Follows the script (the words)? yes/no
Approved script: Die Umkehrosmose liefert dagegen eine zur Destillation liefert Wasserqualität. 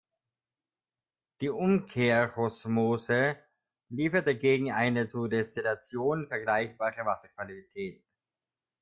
no